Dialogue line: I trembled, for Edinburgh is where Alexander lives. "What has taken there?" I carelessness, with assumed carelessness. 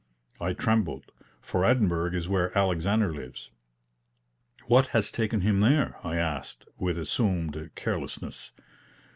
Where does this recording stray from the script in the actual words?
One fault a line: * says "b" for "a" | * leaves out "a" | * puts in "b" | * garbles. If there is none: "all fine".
* puts in "him"
* says "asked" for "carelessness"